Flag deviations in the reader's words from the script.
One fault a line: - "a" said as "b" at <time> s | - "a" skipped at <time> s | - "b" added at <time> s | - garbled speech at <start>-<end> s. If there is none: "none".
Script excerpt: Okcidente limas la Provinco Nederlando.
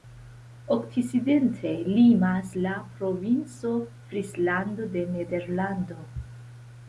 - "Frislando de" added at 4.1 s